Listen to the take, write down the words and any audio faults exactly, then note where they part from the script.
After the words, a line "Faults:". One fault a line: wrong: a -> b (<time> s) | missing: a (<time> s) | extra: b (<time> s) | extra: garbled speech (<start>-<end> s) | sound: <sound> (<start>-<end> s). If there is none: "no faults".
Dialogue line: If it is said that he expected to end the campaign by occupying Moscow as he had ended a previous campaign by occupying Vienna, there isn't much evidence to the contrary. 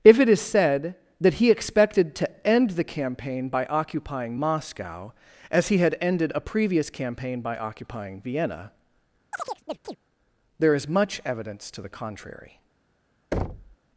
If it is said that he expected to end the campaign by occupying Moscow as he had ended a previous campaign by occupying Vienna, there is much evidence to the contrary.
Faults:
sound: chirp (9.3-10.0 s)
wrong: isn't -> is (10.7 s)
sound: thud (13.3-13.8 s)